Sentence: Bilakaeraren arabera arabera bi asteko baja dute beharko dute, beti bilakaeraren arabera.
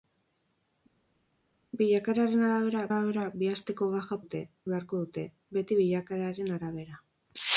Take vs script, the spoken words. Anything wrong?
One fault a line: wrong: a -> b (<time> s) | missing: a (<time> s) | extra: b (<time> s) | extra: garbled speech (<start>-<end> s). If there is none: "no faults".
no faults